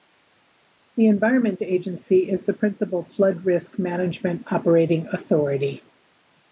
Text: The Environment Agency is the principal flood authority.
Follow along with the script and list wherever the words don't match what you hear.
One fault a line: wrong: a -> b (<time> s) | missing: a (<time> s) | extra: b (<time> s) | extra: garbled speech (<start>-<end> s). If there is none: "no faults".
extra: risk management operating (3.4 s)